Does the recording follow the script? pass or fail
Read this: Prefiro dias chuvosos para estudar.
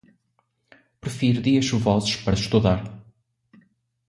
pass